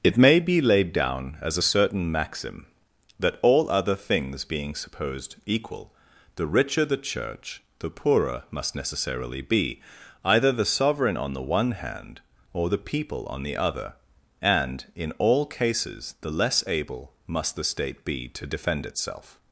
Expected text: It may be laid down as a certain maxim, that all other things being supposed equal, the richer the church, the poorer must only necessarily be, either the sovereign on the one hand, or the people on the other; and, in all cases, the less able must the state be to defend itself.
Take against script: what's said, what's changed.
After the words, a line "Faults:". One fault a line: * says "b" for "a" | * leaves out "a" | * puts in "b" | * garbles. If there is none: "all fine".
It may be laid down as a certain maxim, that all other things being supposed equal, the richer the church, the poorer must necessarily be, either the sovereign on the one hand, or the people on the other; and, in all cases, the less able must the state be to defend itself.
Faults:
* leaves out "only"